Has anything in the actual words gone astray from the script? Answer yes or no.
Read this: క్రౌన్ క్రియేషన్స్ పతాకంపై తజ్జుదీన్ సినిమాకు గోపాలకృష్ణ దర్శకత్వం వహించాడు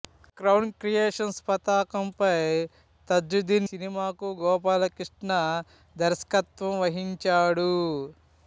no